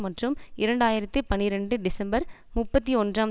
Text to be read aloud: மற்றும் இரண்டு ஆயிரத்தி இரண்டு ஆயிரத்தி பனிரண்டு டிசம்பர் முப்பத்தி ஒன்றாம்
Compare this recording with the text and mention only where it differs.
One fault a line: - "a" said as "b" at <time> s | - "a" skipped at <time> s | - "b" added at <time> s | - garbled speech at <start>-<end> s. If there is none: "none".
- "இரண்டு ஆயிரத்தி" skipped at 1.2 s